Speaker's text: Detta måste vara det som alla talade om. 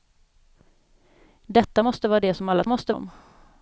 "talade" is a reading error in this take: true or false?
true